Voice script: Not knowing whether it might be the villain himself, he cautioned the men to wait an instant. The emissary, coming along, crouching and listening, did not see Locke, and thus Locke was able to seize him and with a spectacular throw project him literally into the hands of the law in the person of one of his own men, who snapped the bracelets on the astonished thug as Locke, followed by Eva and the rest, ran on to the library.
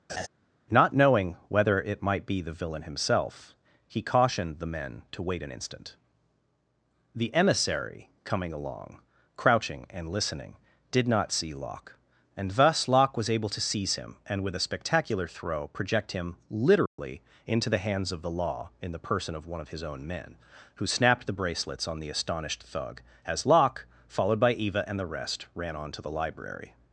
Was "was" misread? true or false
false